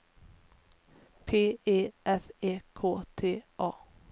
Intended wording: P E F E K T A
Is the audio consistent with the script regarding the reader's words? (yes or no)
yes